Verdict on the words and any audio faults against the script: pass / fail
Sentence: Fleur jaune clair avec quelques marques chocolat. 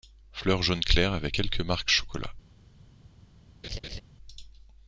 fail